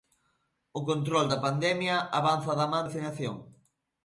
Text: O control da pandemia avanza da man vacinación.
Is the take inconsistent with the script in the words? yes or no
no